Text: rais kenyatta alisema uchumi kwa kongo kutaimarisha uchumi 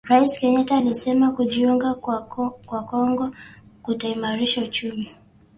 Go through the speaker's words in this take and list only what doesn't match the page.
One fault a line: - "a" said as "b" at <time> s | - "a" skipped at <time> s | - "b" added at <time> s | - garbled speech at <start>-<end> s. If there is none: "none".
- "uchumi" said as "kujiunga" at 1.3 s